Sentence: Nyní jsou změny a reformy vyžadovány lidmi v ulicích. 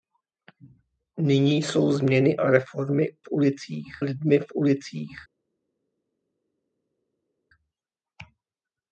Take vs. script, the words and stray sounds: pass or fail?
fail